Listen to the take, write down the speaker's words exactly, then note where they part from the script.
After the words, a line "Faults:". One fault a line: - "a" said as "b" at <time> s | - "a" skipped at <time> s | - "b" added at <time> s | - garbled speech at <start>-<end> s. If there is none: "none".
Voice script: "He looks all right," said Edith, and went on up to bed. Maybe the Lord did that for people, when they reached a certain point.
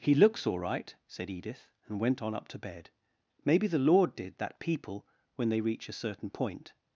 "He looks all right," said Edith, and went on up to bed. Maybe the Lord did that people, when they reach a certain point.
Faults:
- "for" skipped at 4.6 s
- "reached" said as "reach" at 5.6 s